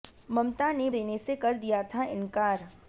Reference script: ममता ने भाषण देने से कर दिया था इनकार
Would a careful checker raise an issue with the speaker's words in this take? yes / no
yes